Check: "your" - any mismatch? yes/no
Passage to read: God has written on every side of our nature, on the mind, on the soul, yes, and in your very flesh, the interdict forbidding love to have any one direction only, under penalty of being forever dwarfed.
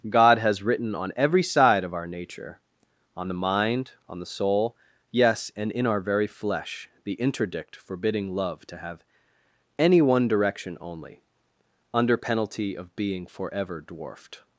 yes